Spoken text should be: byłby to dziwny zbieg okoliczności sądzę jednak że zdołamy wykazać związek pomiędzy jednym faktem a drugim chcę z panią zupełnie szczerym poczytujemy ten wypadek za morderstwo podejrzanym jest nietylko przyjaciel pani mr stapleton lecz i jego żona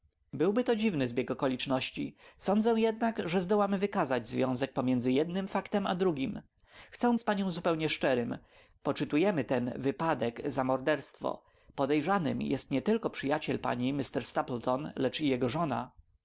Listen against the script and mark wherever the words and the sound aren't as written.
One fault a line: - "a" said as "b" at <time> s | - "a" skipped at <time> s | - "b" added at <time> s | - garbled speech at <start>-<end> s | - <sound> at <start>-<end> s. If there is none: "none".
none